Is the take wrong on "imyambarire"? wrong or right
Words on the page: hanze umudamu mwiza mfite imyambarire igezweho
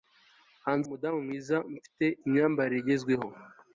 right